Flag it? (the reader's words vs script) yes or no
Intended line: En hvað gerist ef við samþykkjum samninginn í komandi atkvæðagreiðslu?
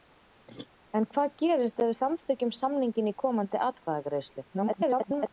yes